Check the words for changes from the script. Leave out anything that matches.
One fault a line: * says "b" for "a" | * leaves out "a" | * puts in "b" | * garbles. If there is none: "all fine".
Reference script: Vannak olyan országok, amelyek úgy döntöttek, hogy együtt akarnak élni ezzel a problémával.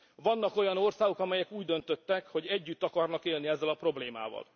all fine